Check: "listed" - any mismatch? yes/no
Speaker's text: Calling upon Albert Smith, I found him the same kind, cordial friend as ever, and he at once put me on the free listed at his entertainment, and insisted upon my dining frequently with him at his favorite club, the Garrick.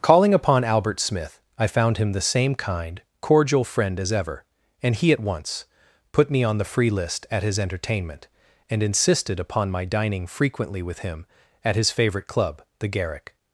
yes